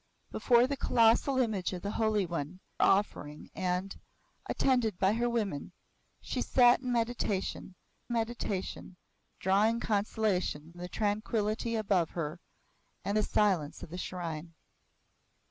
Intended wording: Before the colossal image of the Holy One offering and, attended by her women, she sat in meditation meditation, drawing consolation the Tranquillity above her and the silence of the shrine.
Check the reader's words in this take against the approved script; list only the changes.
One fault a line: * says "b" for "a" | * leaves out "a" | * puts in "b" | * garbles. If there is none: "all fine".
all fine